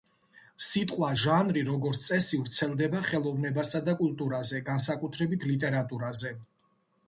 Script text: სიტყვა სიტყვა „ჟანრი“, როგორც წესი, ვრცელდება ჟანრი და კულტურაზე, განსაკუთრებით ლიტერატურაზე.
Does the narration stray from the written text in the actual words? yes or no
yes